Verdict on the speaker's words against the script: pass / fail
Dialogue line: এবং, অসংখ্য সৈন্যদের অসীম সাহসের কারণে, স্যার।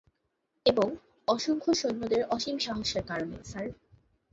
pass